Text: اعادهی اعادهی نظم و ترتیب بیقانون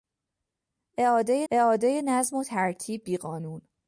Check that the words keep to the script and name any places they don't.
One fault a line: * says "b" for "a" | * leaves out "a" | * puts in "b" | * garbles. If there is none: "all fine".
all fine